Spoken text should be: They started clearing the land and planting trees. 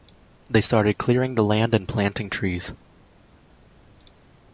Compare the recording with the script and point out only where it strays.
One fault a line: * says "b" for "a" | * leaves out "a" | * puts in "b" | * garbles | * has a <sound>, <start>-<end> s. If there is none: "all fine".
all fine